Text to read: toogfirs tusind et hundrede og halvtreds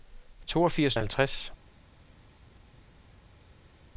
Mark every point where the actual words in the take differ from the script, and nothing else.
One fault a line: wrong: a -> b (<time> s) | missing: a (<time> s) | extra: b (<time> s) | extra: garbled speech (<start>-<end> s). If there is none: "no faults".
missing: tusind et hundrede (0.9 s)